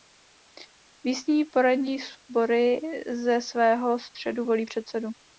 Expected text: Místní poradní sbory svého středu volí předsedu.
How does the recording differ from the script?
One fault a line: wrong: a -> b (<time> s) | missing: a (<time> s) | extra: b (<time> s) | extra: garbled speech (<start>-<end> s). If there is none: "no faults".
extra: ze (3.1 s)